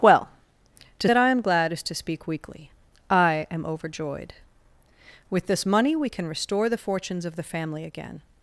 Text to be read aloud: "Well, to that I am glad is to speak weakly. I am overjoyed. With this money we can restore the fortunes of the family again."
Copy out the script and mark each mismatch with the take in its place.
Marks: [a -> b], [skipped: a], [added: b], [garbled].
"Well, to that I am glad is to speak weakly. I am overjoyed. With this money we can restore the fortunes of the family again."